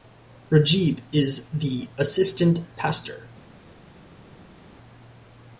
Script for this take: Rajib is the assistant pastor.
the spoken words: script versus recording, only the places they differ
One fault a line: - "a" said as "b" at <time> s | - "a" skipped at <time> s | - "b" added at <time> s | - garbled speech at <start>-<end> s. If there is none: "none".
none